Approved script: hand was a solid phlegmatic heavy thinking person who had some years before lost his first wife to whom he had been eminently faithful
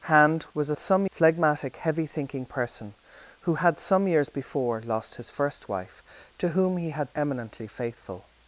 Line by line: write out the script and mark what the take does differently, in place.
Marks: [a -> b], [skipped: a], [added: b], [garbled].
hand was a [solid -> some] phlegmatic heavy thinking person who had some years before lost his first wife to whom he had [skipped: been] eminently faithful